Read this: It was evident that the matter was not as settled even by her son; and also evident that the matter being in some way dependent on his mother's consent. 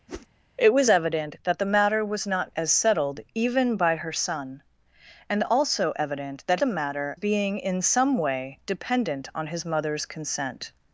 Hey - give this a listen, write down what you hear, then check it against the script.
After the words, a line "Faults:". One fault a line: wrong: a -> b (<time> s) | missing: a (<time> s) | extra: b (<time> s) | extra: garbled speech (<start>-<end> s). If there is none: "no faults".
It was evident that the matter was not as settled even by her son; and also evident that the matter being in some way dependent on his mother's consent.
Faults:
no faults